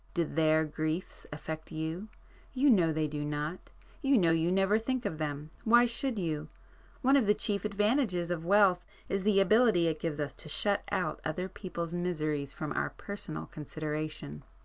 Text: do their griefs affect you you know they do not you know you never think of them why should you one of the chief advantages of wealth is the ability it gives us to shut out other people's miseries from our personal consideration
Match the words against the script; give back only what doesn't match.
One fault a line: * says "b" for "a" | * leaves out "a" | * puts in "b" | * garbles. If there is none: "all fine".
all fine